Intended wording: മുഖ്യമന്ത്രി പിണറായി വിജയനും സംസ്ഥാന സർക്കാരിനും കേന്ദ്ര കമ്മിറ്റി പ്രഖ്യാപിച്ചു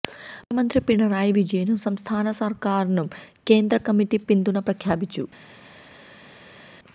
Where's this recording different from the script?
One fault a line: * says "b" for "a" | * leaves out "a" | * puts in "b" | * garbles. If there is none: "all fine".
* puts in "പിന്തുണ"